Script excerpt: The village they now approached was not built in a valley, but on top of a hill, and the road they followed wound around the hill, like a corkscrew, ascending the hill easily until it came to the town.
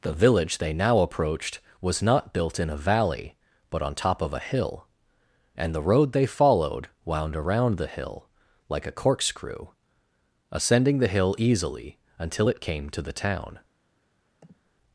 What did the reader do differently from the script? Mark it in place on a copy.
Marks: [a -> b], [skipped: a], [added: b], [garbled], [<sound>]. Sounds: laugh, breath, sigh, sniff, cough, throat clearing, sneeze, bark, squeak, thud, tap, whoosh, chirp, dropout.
The village they now approached was not built in a valley, but on top of a hill, and the road they followed wound around the hill, like a corkscrew, ascending the hill easily until it came to the town. [sniff]